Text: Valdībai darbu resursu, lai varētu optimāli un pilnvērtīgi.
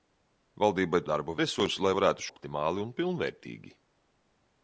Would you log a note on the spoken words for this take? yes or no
no